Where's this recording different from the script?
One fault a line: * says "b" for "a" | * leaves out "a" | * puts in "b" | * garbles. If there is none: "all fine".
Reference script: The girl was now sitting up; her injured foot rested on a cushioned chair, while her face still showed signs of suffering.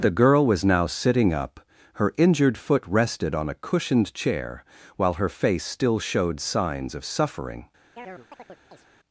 all fine